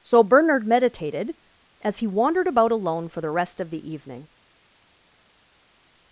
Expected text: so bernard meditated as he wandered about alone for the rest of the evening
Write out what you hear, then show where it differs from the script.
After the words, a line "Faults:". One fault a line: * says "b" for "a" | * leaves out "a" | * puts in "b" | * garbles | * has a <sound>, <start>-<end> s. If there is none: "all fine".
so bernard meditated as he wandered about alone for the rest of the evening
Faults:
all fine